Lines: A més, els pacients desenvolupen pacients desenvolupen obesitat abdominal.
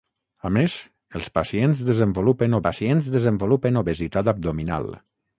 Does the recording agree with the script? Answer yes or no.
yes